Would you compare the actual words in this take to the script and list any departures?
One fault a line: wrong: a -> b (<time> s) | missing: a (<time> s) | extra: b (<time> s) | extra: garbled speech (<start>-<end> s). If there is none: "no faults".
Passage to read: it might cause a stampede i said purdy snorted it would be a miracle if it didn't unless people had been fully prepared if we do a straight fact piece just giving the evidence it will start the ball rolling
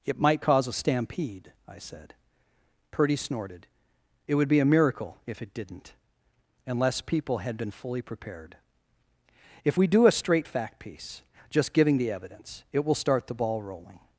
no faults